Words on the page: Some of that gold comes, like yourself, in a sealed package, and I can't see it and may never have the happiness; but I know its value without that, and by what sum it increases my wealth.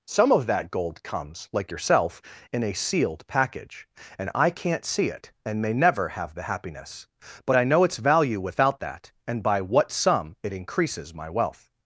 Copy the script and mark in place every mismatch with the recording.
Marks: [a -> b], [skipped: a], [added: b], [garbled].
Some of that gold comes, like yourself, in a sealed package, and I can't see it and may never have the happiness; but I know its value without that, and by what sum it increases my wealth.